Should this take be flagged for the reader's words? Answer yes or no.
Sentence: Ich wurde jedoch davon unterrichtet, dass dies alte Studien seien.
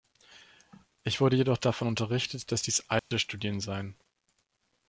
no